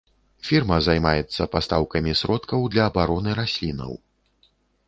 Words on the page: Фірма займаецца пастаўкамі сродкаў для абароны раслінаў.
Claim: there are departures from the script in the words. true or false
false